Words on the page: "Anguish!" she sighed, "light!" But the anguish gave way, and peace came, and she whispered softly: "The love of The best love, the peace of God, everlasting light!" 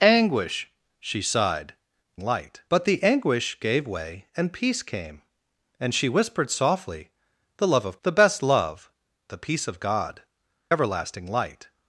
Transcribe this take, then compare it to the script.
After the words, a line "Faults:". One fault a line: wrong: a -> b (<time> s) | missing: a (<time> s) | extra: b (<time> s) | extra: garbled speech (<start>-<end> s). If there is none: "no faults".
"Anguish!" she sighed, "light!" But the anguish gave way, and peace came, and she whispered softly: "The love of The best love, the peace of God, everlasting light!"
Faults:
no faults